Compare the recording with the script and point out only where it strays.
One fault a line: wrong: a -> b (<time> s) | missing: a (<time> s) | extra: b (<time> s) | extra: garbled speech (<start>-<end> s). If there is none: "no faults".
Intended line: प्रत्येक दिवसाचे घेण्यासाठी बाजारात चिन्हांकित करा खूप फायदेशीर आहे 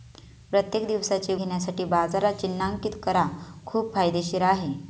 no faults